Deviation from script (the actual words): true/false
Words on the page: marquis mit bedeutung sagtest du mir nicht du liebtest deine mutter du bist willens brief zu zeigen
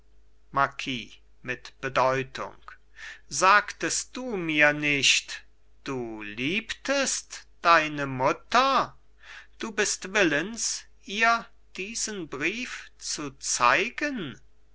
true